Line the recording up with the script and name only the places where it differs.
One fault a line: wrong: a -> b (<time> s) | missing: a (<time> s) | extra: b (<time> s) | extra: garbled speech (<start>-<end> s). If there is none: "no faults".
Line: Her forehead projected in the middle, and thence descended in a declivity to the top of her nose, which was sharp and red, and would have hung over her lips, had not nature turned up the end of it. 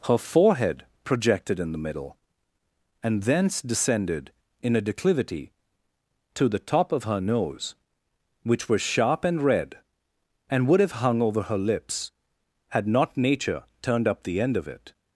no faults